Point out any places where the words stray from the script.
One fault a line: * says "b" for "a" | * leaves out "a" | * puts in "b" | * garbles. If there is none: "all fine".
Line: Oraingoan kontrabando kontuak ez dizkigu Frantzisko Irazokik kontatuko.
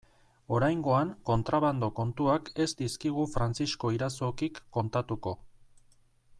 all fine